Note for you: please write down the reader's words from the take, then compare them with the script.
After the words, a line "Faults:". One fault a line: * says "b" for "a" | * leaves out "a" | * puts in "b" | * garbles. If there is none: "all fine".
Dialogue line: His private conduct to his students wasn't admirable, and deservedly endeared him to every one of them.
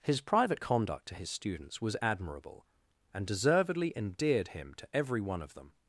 His private conduct to his students was admirable, and deservedly endeared him to every one of them.
Faults:
* says "was" for "wasn't"